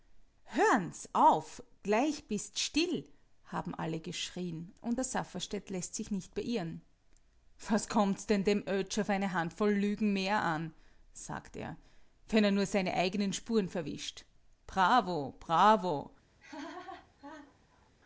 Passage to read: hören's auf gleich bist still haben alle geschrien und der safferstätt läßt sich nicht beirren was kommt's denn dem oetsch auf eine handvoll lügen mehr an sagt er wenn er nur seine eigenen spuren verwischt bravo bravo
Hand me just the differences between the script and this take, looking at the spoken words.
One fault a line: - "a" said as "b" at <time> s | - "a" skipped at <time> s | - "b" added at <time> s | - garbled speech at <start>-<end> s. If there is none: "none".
none